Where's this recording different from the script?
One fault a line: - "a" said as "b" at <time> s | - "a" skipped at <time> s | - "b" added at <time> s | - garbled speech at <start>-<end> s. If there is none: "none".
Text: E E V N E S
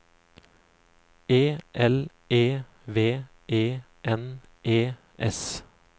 - "L" added at 1.7 s
- "E" added at 3.5 s